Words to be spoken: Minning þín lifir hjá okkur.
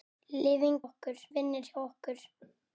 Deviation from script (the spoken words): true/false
true